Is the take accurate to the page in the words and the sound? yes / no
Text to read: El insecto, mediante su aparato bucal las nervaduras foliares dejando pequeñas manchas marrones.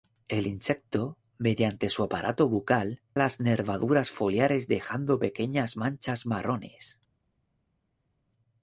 yes